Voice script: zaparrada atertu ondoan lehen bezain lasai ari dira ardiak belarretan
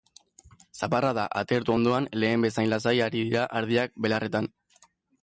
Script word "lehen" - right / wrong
right